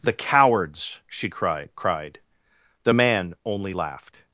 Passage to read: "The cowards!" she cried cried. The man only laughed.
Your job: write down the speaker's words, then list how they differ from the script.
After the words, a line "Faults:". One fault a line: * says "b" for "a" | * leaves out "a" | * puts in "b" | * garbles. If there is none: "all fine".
"The cowards!" she cried cried. The man only laughed.
Faults:
all fine